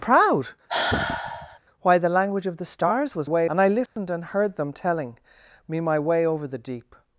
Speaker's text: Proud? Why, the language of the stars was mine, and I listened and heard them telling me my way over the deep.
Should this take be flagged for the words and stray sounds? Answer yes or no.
yes